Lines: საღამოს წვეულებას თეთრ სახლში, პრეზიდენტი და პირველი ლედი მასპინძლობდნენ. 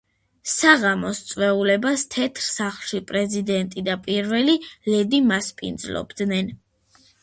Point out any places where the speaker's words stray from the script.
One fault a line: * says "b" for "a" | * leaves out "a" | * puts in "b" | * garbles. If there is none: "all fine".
all fine